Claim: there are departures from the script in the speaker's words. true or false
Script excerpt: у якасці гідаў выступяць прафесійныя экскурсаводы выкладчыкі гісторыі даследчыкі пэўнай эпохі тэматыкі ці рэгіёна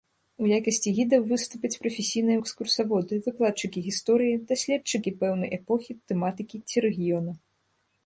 false